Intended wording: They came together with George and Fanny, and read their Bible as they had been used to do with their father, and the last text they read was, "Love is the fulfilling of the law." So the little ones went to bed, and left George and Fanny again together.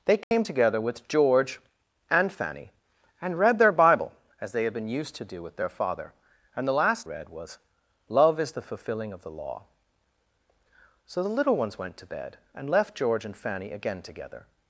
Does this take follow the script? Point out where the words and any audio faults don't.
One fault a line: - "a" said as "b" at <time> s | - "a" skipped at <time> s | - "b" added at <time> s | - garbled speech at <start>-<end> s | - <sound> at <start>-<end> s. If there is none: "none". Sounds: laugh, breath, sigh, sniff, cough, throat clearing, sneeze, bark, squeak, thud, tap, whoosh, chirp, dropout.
- dropout at 0.2-0.3 s
- "text they" skipped at 7.1 s